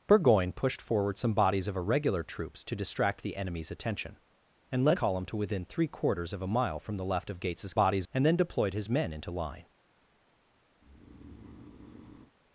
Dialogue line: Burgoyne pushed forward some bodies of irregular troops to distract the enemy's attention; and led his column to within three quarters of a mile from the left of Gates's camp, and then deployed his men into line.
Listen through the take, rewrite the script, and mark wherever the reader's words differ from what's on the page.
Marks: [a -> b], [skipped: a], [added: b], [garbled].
Burgoyne pushed forward some bodies of irregular troops to distract the enemy's attention; and led [skipped: his] column to within three quarters of a mile from the left of Gates's [camp, -> bodies] and then deployed his men into line.